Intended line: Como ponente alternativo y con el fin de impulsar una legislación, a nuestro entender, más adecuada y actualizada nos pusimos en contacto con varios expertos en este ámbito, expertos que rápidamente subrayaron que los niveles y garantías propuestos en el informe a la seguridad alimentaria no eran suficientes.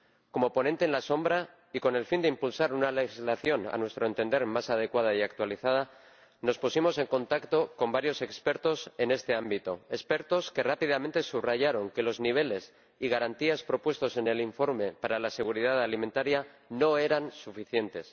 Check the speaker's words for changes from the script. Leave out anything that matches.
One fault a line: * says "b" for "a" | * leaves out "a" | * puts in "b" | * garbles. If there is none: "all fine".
* says "para" for "a"